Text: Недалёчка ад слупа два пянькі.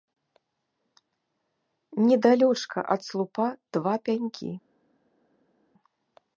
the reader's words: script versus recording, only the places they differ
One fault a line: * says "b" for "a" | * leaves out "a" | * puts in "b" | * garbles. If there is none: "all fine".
all fine